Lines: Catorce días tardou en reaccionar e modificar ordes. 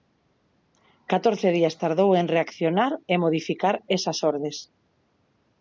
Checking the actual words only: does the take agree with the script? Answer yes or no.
no